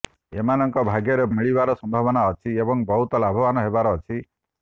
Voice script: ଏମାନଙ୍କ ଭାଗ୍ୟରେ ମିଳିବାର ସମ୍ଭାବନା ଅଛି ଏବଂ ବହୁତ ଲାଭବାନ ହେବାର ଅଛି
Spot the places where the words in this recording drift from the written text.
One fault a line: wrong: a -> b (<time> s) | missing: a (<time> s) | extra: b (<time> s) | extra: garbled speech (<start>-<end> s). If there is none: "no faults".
no faults